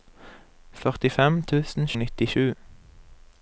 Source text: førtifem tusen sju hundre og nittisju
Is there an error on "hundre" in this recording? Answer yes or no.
yes